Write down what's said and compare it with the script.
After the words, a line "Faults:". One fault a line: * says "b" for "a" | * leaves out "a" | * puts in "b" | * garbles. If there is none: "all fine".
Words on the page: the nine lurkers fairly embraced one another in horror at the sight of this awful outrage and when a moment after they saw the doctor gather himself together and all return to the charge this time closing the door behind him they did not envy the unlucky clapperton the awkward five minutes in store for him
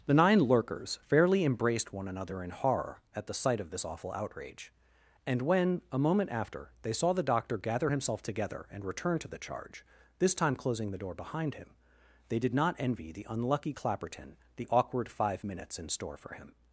the nine lurkers fairly embraced one another in horror at the sight of this awful outrage and when a moment after they saw the doctor gather himself together and return to the charge this time closing the door behind him they did not envy the unlucky clapperton the awkward five minutes in store for him
Faults:
* leaves out "all"